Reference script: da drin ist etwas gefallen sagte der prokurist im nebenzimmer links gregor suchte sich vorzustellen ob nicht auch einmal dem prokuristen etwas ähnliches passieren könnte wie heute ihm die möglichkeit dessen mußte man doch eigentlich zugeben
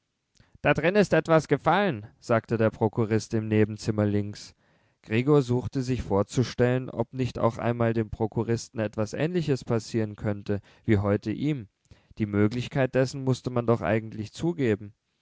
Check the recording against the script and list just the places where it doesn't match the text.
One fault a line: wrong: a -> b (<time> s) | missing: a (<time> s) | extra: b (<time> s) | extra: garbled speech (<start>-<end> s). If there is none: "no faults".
no faults